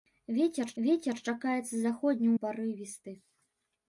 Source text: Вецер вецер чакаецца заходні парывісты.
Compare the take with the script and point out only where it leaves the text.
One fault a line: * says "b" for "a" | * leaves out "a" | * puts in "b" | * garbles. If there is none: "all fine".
all fine